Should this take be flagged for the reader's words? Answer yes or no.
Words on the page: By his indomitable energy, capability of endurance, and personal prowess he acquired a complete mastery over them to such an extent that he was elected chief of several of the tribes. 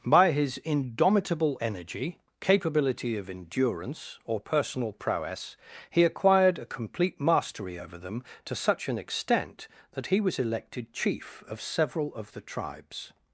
yes